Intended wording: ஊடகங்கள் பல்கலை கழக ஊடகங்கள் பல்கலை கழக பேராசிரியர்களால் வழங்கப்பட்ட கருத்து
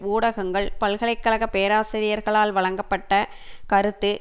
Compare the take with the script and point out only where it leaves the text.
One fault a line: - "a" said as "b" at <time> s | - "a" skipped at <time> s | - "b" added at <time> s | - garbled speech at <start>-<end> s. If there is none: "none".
- "ஊடகங்கள் பல்கலை கழக" skipped at 1.5 s